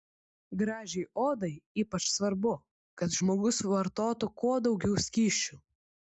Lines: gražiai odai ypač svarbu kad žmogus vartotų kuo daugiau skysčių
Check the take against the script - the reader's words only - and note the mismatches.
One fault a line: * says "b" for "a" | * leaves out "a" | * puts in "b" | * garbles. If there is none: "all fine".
all fine